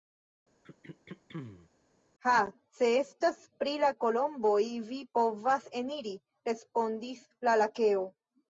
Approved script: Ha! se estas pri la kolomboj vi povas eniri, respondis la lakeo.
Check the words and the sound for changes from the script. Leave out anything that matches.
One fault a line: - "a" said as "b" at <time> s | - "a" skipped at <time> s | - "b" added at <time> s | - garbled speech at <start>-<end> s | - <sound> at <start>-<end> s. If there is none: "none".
- throat clearing at 0.6-1.7 s